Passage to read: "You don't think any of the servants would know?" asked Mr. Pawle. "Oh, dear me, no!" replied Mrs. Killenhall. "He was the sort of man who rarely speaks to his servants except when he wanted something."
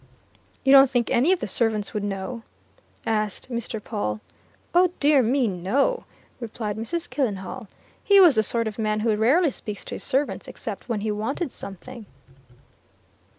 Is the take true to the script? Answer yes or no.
yes